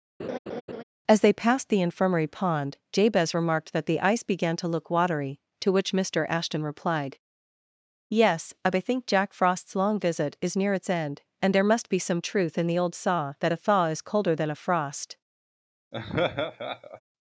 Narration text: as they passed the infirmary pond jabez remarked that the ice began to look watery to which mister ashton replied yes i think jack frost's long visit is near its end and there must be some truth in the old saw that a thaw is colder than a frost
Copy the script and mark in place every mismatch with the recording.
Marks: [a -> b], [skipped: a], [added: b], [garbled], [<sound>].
[laugh] as they passed the infirmary pond jabez remarked that the ice began to look watery to which mister ashton replied yes i think jack frost's long visit is near its end and there must be some truth in the old saw that a thaw is colder than a frost [laugh]